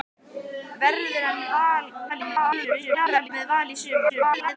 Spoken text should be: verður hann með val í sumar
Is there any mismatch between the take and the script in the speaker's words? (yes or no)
yes